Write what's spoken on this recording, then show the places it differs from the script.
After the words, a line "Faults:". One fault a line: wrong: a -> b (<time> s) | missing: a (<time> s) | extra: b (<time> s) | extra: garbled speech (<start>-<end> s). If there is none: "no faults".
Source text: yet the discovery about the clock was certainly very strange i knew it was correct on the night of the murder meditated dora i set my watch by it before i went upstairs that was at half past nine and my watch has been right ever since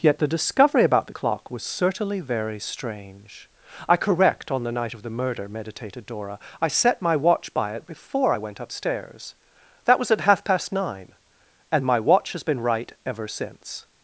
yet the discovery about the clock was certainly very strange i correct on the night of the murder meditated dora i set my watch by it before i went upstairs that was at half past nine and my watch has been right ever since
Faults:
missing: knew it was (4.0 s)